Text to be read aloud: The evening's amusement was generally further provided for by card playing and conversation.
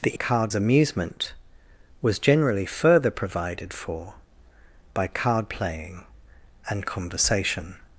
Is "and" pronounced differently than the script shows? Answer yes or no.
no